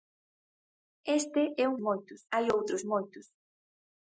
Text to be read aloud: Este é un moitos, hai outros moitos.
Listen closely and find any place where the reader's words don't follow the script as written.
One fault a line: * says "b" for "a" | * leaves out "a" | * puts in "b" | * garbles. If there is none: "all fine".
all fine